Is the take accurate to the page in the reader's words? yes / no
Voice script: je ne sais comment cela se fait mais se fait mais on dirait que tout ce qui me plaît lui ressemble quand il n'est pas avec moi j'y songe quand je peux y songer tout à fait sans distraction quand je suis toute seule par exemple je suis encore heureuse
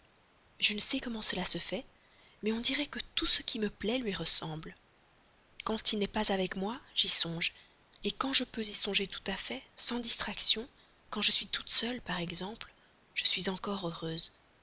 no